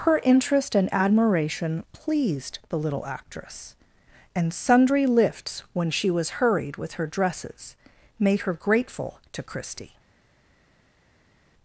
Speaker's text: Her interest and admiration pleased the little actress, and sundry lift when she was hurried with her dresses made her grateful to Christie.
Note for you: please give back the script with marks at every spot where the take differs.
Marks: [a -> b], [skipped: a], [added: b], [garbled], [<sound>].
Her interest and admiration pleased the little actress, and sundry [lift -> lifts] when she was hurried with her dresses made her grateful to Christie.